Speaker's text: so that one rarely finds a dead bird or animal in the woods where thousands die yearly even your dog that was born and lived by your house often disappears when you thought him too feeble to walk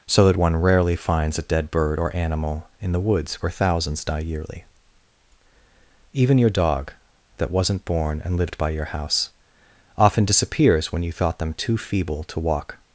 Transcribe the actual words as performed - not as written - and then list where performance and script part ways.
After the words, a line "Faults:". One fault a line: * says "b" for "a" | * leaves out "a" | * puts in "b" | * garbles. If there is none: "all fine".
so that one rarely finds a dead bird or animal in the woods where thousands die yearly even your dog that wasn't born and lived by your house often disappears when you thought them too feeble to walk
Faults:
* says "wasn't" for "was"
* says "them" for "him"